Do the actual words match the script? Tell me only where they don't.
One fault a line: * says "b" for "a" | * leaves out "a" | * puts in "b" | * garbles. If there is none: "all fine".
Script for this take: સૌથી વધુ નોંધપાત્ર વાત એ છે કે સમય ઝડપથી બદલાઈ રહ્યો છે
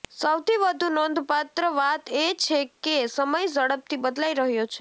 all fine